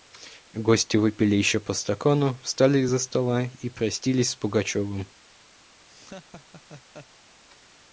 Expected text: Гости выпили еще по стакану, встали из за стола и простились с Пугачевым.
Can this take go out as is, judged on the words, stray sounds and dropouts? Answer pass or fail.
fail